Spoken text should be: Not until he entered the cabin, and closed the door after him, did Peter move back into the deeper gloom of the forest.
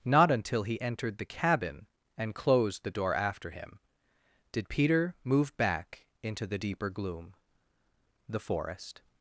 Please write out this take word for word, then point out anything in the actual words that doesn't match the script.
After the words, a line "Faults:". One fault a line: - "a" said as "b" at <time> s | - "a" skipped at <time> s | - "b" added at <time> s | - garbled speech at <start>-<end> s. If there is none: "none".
Not until he entered the cabin, and closed the door after him, did Peter move back into the deeper gloom the forest.
Faults:
- "of" skipped at 7.3 s